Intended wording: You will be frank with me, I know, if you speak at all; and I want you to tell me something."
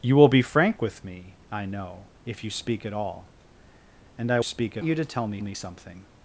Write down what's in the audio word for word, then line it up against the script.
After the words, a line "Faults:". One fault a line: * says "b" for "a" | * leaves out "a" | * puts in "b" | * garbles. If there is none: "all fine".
You will be frank with me, I know, if you speak at all; and I speak you to tell me me something."
Faults:
* says "speak" for "want"
* puts in "me"